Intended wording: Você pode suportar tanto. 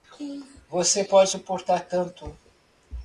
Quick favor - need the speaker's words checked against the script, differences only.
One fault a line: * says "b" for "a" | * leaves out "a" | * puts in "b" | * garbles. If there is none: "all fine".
all fine